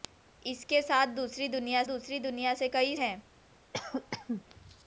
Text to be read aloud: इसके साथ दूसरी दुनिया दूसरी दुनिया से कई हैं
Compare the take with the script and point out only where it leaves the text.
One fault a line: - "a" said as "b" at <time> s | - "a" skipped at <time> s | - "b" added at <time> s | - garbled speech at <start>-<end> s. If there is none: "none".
none